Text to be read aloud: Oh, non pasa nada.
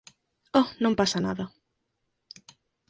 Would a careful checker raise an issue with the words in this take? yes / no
no